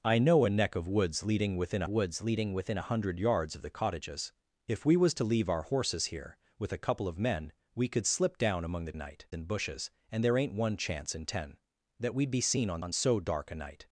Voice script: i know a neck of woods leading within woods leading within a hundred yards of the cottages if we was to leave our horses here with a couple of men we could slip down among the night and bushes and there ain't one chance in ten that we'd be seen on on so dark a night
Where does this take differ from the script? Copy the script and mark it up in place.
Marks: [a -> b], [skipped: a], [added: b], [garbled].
i know a neck of woods leading within woods leading within a hundred yards of the cottages if we was to leave our horses here with a couple of men we could slip down among the night and bushes and there ain't one chance in ten that we'd be seen on on so dark a night